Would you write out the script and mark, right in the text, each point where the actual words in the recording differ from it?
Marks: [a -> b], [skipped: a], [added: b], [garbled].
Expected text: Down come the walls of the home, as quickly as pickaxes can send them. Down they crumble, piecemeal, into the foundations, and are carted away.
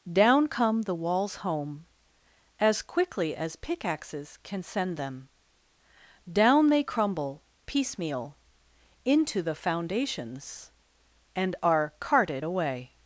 Down come the walls [skipped: of the] home, as quickly as pickaxes can send them. Down they crumble, piecemeal, into the foundations, and are carted away.